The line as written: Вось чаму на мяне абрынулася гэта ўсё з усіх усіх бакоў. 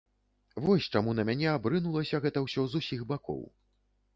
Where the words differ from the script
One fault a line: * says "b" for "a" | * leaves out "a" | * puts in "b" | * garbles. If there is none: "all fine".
* leaves out "усіх"